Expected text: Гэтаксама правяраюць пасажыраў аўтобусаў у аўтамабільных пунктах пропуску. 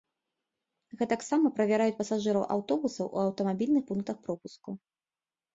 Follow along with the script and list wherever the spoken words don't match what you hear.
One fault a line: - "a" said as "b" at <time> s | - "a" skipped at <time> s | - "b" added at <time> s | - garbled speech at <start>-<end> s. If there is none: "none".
none